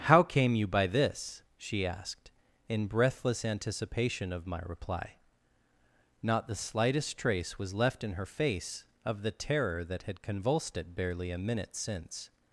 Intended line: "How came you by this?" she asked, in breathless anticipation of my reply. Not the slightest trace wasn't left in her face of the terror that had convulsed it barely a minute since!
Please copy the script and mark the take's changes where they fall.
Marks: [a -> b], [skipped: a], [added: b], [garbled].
"How came you by this?" she asked, in breathless anticipation of my reply. Not the slightest trace [wasn't -> was] left in her face of the terror that had convulsed it barely a minute since!